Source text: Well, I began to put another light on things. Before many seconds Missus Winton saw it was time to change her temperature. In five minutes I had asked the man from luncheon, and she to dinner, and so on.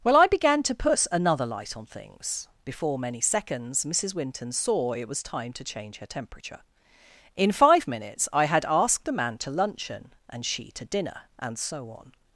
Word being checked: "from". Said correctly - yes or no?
no